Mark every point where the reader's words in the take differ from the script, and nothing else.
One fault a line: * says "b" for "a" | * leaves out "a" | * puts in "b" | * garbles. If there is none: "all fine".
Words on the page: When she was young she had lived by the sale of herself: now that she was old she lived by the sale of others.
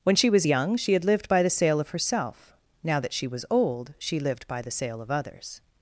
all fine